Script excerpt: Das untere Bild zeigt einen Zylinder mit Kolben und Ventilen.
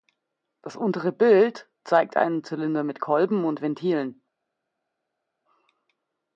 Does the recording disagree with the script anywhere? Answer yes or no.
no